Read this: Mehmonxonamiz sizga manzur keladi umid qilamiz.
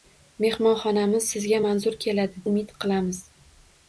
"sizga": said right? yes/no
yes